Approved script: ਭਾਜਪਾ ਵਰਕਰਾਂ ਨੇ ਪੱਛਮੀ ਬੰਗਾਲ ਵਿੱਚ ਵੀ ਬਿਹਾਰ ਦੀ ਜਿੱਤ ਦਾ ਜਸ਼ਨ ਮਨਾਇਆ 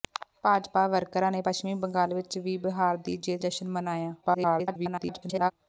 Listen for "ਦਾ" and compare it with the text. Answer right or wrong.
wrong